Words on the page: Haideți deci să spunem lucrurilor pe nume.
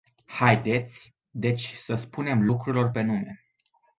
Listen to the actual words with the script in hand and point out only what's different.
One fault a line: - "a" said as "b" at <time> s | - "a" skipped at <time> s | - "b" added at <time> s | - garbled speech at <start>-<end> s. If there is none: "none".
none